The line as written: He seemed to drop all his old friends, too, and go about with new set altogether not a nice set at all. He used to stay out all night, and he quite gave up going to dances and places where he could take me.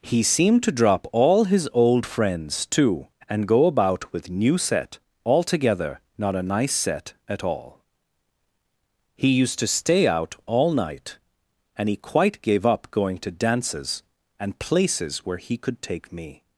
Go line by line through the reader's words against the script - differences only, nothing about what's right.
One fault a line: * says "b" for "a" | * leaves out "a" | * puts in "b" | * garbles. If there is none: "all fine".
all fine